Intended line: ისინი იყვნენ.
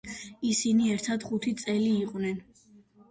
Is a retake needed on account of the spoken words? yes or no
yes